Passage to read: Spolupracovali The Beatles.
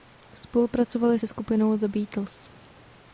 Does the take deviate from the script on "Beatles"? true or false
false